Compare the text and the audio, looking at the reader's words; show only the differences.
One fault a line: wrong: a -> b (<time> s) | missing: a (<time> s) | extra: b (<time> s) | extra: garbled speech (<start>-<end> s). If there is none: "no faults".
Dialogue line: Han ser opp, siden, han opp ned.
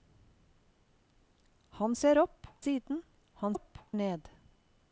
no faults